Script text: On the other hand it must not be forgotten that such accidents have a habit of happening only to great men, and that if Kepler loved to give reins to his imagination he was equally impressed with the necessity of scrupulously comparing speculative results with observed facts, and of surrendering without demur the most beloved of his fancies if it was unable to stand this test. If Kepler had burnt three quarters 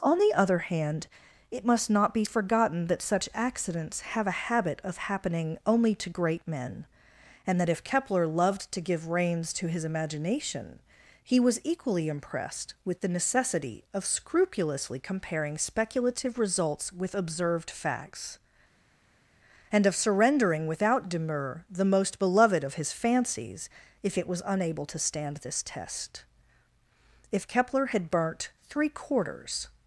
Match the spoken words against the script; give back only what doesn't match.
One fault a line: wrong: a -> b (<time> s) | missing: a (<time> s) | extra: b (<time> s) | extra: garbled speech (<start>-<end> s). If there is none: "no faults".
no faults